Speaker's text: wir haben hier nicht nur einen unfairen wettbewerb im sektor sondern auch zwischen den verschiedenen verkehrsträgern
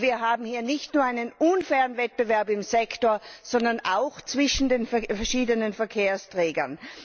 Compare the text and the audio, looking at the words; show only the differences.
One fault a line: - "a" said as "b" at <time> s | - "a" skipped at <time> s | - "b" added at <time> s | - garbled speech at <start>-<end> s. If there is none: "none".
none